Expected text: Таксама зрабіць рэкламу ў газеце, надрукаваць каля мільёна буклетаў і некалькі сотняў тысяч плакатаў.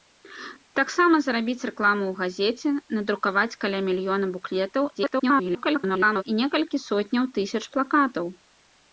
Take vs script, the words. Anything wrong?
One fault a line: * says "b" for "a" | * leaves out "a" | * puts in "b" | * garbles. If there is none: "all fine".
* garbles